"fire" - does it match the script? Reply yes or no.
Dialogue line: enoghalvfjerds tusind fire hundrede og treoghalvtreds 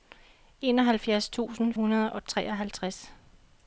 no